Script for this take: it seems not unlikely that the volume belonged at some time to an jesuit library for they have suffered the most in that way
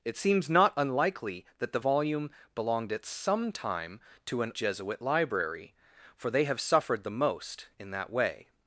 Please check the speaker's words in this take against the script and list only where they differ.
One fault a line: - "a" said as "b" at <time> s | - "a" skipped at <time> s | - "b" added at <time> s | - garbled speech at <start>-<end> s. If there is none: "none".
none